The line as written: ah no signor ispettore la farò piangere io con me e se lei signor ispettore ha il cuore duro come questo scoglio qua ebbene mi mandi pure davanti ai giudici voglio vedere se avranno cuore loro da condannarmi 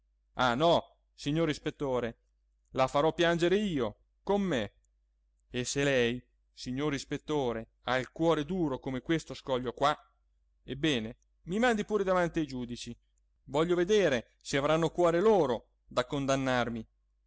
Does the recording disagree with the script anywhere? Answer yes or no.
no